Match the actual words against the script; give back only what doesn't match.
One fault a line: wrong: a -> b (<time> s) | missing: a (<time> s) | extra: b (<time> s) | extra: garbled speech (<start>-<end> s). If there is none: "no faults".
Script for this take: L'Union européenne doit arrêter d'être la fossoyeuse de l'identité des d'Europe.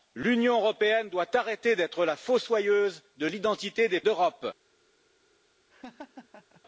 no faults